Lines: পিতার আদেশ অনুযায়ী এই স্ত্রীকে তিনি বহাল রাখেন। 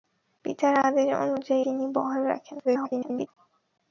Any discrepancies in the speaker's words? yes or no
yes